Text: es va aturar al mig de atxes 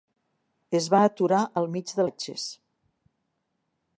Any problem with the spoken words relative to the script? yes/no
no